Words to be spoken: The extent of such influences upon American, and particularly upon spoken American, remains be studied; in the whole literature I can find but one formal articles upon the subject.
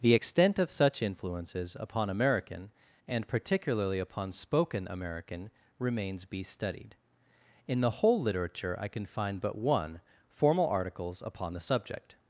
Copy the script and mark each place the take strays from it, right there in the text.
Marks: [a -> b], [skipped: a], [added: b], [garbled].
The extent of such influences upon American, and particularly upon spoken American, remains be studied; in the whole literature I can find but one formal articles upon the subject.